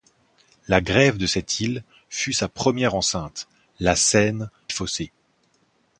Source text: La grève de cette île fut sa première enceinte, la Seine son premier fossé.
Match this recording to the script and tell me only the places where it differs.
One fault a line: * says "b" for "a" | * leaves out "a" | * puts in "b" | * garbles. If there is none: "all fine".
* leaves out "son premier"